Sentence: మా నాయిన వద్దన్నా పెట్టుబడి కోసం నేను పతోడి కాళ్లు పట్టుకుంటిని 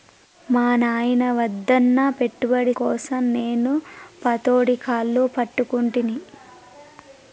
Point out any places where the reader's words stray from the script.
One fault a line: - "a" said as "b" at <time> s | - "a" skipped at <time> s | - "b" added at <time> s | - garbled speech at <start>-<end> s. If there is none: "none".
none